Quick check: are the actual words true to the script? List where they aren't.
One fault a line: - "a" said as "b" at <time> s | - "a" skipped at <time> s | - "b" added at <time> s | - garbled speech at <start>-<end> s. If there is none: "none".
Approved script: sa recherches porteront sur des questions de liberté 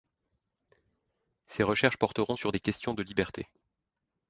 - "sa" said as "ses" at 1.4 s